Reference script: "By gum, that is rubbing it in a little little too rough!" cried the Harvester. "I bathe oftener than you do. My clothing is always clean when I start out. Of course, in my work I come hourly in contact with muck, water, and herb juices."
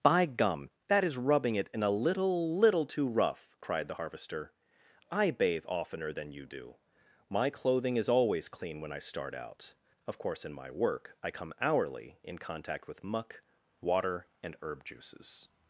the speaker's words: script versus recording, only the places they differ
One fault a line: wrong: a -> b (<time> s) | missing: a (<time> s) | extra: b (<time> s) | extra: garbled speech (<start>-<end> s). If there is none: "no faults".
no faults